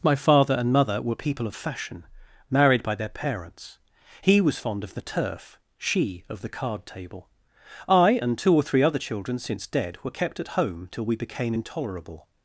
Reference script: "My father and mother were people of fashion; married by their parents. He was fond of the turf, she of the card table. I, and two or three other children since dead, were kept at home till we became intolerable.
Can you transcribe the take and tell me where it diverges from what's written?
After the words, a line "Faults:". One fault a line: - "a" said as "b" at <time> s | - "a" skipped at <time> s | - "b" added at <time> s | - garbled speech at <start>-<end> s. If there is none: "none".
"My father and mother were people of fashion; married by their parents. He was fond of the turf, she of the card table. I, and two or three other children since dead, were kept at home till we became intolerable.
Faults:
none